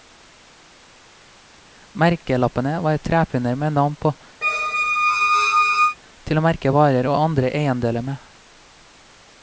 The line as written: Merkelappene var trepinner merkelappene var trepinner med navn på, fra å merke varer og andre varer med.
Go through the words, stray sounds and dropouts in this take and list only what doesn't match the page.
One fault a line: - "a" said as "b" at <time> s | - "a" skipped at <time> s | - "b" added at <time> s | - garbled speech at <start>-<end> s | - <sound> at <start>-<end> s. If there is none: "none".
- "merkelappene var trepinner" skipped at 3.5 s
- squeak at 4.4-6.0 s
- "fra" said as "til" at 6.2 s
- "varer" said as "eiendeler" at 7.6 s